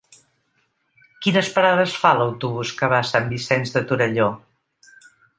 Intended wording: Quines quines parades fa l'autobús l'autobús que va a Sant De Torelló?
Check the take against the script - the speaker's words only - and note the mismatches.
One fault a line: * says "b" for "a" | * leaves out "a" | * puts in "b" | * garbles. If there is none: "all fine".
* leaves out "quines"
* leaves out "l'autobús"
* puts in "Vicenç"